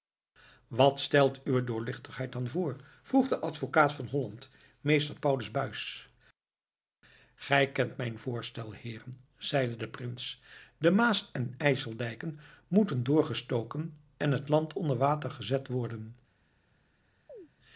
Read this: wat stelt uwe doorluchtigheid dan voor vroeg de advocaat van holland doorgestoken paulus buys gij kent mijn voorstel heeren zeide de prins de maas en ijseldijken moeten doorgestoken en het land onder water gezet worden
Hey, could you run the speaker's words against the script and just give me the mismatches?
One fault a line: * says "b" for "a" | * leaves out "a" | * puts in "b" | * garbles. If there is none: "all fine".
* says "meester" for "doorgestoken"